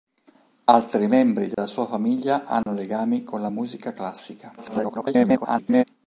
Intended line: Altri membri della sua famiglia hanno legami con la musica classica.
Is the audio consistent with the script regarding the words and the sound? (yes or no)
no